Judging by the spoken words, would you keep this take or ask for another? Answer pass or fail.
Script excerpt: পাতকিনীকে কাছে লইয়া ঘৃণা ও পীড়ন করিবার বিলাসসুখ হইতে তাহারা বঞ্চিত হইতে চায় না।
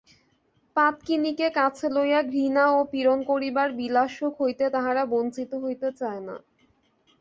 pass